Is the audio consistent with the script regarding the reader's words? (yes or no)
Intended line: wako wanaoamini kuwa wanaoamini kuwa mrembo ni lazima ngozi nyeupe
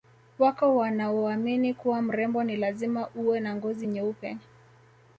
no